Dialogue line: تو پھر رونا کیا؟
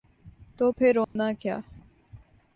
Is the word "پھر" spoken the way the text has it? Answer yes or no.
yes